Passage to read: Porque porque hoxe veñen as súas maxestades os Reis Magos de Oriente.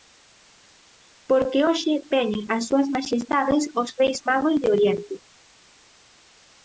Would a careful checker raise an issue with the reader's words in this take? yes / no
yes